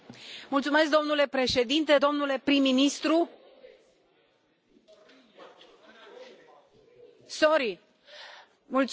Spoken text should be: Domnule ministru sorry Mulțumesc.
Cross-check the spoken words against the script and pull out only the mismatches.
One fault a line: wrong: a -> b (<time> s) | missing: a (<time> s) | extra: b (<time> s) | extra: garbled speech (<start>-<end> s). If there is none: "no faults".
extra: președinte domnule prim (1.3 s)